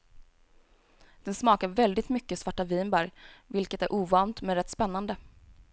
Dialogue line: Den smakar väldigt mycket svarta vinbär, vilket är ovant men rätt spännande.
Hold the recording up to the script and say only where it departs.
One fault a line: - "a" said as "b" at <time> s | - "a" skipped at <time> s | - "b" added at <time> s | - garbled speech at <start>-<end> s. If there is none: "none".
none